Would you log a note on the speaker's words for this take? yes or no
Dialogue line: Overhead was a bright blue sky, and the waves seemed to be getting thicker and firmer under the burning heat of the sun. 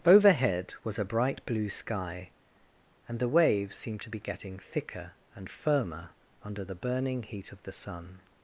no